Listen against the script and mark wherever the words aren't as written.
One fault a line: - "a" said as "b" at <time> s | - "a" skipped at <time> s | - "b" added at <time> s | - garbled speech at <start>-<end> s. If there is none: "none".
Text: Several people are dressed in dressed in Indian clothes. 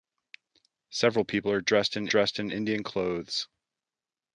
none